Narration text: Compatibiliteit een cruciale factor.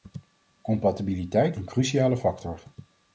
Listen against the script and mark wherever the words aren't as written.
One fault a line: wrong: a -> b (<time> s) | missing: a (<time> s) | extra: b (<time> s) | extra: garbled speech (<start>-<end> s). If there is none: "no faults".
no faults